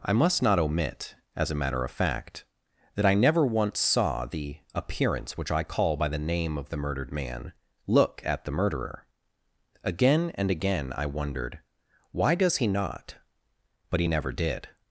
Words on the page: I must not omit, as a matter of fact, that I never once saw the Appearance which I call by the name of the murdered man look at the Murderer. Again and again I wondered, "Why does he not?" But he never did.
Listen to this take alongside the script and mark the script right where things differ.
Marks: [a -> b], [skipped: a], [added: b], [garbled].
I must not omit, as a matter of fact, that I never once saw the Appearance which I call by the name of the murdered man look at the Murderer. Again and again I wondered, "Why does he not?" But he never did.